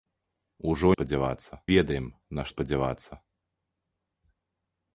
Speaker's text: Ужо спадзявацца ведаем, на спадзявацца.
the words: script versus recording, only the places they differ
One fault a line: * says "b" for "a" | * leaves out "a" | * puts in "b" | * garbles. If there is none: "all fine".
all fine